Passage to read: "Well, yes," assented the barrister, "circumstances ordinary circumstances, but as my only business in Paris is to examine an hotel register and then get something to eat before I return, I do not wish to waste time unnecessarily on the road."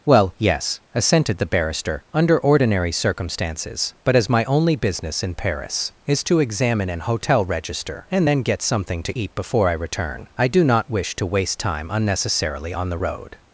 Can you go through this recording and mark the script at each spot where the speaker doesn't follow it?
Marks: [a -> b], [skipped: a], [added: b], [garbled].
"Well, yes," assented the barrister, ["circumstances -> under] ordinary circumstances, but as my only business in Paris is to examine an hotel register and then get something to eat before I return, I do not wish to waste time unnecessarily on the road."